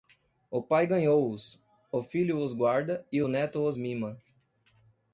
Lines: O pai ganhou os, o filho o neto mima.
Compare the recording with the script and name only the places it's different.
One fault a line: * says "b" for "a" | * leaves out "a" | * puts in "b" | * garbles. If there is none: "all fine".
* puts in "os guarda e"
* puts in "os"